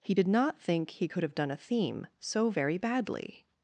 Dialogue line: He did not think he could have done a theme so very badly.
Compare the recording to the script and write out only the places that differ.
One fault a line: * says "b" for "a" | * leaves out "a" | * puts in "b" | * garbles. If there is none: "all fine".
all fine